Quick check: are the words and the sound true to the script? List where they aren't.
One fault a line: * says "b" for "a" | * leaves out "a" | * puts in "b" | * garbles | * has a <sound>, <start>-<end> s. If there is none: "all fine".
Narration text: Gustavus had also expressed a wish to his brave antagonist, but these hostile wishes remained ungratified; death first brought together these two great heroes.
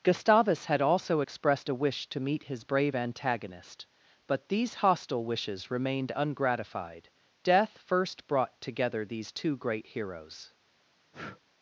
* puts in "meet"
* has a breath, 11.1-11.4 s